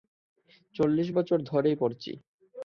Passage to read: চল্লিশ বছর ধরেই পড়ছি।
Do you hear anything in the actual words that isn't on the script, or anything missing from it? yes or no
no